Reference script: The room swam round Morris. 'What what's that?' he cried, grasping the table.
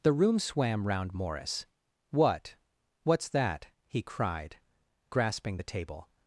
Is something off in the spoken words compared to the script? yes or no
no